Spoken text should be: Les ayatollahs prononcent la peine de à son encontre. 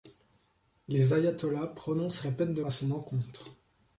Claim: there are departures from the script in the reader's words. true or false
false